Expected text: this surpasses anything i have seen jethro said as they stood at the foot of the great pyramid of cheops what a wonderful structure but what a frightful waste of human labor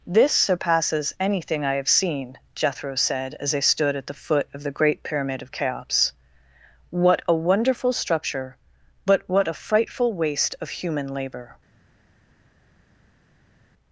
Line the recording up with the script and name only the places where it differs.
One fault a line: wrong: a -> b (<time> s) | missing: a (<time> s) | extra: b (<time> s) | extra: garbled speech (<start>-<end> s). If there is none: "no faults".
no faults